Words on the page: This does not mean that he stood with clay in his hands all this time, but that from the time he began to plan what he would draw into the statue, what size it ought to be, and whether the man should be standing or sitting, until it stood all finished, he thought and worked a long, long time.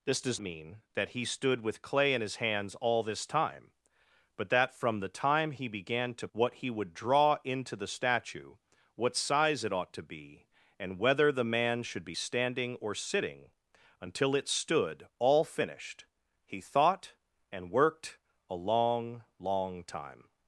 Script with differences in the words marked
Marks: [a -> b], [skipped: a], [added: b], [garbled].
This does [skipped: not] mean that he stood with clay in his hands all this time, but that from the time he began to [skipped: plan] what he would draw into the statue, what size it ought to be, and whether the man should be standing or sitting, until it stood all finished, he thought and worked a long, long time.